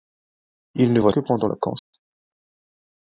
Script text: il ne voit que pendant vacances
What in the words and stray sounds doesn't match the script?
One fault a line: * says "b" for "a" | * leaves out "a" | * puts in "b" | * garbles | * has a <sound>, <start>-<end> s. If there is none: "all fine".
* has a dropout, 1.8-1.9 s